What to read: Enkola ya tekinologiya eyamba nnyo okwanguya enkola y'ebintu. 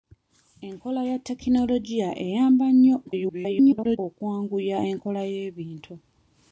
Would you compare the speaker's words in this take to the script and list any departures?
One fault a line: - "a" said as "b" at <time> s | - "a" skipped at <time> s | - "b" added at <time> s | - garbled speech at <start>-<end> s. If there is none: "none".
- garbled speech at 3.0-4.0 s